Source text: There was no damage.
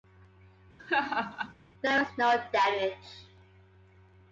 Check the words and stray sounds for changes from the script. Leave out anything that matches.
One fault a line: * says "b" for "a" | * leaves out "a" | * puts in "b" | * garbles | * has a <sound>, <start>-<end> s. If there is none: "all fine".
* has a laugh, 0.8-1.5 s